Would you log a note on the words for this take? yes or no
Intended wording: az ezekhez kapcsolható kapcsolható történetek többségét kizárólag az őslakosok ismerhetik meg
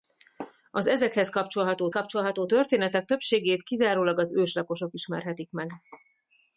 no